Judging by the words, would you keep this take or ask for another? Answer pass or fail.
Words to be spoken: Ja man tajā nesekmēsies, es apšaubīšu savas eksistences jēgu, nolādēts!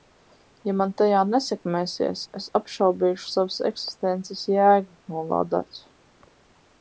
pass